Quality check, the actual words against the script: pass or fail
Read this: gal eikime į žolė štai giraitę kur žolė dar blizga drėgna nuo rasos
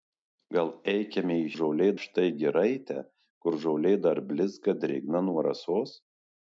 pass